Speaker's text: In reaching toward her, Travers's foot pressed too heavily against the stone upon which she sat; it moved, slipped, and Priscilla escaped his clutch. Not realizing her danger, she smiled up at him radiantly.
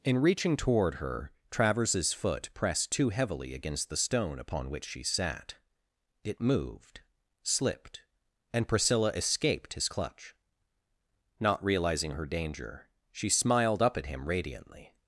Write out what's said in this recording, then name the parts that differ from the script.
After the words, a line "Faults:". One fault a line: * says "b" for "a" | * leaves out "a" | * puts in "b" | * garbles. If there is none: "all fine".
In reaching toward her, Travers's foot pressed too heavily against the stone upon which she sat; it moved, slipped, and Priscilla escaped his clutch. Not realizing her danger, she smiled up at him radiantly.
Faults:
all fine